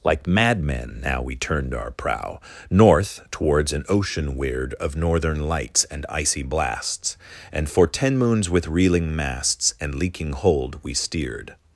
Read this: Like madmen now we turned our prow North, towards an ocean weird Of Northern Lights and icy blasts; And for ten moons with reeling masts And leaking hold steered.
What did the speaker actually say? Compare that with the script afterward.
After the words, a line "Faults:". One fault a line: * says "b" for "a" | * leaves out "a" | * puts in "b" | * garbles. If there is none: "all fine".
Like madmen now we turned our prow North, towards an ocean weird Of Northern Lights and icy blasts; And for ten moons with reeling masts And leaking hold we steered.
Faults:
* puts in "we"